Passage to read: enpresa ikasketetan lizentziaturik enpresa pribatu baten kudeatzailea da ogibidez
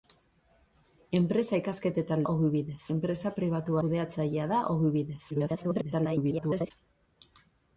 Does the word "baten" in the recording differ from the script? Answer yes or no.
yes